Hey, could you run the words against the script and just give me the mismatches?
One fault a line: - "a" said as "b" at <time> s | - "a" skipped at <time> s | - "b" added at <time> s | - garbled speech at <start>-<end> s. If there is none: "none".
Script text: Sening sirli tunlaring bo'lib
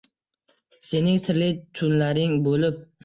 none